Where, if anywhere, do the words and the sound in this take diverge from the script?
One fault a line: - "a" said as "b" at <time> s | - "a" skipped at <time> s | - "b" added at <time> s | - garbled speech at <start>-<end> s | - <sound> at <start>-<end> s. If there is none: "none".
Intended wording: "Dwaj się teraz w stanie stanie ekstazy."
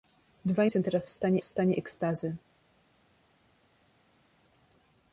none